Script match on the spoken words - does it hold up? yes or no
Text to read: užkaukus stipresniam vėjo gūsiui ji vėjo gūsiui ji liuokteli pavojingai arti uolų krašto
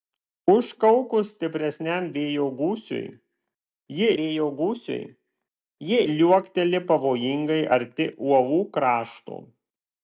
yes